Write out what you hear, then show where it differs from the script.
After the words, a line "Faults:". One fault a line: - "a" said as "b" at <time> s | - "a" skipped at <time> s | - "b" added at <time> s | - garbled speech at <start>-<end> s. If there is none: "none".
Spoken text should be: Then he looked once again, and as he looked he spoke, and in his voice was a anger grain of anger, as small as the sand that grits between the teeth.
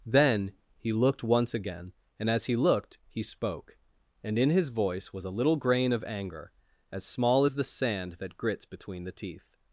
Then he looked once again, and as he looked he spoke, and in his voice was a little grain of anger, as small as the sand that grits between the teeth.
Faults:
- "anger" said as "little" at 5.3 s